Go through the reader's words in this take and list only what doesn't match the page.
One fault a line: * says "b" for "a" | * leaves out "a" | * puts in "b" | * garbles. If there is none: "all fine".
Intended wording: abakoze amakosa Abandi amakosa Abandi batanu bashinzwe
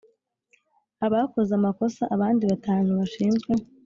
* leaves out "amakosa Abandi"